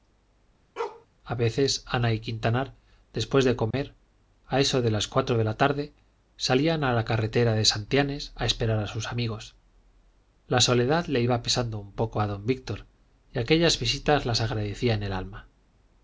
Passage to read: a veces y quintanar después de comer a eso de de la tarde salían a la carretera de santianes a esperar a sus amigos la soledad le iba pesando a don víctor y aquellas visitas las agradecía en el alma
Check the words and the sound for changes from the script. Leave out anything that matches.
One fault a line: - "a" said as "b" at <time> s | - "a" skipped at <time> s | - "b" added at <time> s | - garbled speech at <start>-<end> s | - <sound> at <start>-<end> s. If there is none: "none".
- bark at 0.8-1.1 s
- "ana" added at 1.9 s
- dropout at 3.7-3.7 s
- "las cuatro" added at 4.9 s
- "un poco" added at 11.8 s